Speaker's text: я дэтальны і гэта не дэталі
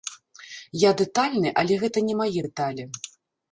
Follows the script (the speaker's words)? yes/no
no